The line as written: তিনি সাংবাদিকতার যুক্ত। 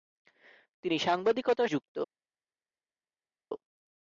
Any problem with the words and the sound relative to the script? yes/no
no